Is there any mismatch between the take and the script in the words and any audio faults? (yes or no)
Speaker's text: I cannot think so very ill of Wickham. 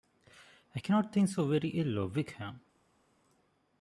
no